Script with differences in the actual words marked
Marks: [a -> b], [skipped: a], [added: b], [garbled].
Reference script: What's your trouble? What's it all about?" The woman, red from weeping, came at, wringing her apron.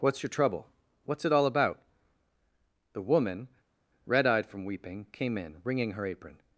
What's your trouble? What's it all about?" The woman, red [added: eyed] from weeping, came [at, -> in] wringing her apron.